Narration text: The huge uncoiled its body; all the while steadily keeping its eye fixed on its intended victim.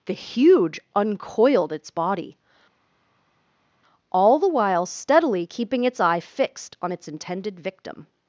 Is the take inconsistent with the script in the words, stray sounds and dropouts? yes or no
no